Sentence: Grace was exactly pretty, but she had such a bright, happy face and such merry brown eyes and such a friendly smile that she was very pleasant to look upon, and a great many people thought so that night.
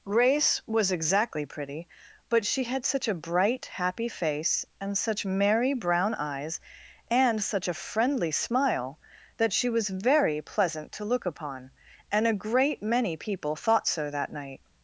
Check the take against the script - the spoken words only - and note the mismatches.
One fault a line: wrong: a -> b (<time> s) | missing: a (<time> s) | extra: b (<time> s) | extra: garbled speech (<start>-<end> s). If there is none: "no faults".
no faults